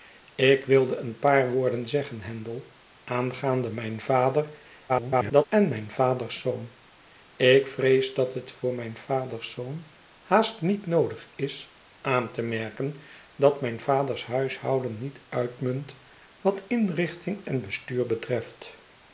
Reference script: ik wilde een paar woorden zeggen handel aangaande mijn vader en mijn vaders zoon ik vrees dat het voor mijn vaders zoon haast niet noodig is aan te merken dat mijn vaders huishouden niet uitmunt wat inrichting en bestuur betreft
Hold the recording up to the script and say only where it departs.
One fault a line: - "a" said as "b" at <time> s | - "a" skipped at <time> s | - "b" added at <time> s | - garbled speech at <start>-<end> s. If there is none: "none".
- garbled speech at 4.9-5.4 s